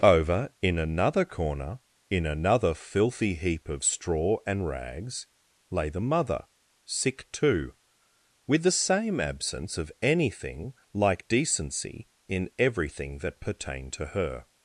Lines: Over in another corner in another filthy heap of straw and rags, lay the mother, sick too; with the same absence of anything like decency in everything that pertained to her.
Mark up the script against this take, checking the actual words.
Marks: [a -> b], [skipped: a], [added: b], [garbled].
Over in another corner in another filthy heap of straw and rags, lay the mother, sick too; with the same absence of anything like decency in everything that pertained to her.